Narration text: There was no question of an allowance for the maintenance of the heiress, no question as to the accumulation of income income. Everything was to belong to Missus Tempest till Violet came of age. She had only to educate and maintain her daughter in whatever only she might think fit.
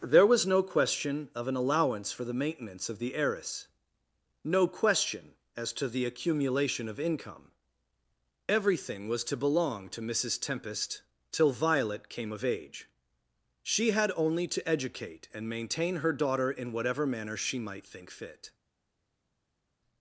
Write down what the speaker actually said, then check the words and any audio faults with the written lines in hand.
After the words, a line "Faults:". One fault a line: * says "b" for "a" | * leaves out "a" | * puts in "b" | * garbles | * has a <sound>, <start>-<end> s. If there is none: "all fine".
There was no question of an allowance for the maintenance of the heiress, no question as to the accumulation of income. Everything was to belong to Missus Tempest till Violet came of age. She had only to educate and maintain her daughter in whatever manner she might think fit.
Faults:
* leaves out "income"
* says "manner" for "only"